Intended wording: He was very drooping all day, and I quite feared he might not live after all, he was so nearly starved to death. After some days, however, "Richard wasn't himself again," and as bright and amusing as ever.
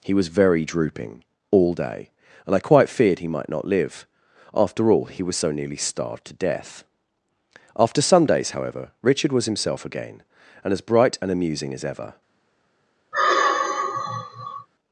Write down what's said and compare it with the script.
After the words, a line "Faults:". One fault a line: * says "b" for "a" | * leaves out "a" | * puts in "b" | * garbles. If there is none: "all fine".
He was very drooping all day, and I quite feared he might not live after all, he was so nearly starved to death. After some days, however, "Richard was himself again," and as bright and amusing as ever.
Faults:
* says "was" for "wasn't"